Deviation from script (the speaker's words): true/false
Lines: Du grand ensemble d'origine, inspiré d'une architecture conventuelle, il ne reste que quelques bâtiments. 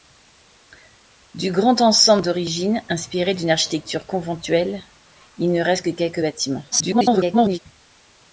true